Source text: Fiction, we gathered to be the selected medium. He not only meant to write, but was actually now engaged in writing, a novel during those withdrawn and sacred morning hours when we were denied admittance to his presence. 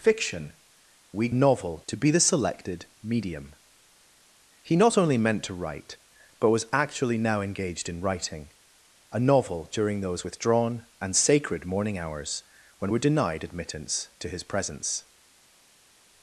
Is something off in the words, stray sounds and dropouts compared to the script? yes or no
yes